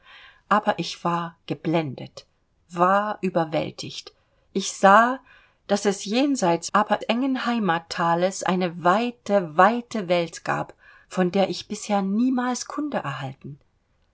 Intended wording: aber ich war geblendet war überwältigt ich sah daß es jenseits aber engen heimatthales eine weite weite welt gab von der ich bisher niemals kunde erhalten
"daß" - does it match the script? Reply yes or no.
yes